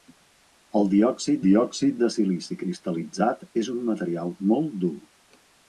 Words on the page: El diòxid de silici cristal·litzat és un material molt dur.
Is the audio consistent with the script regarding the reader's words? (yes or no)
no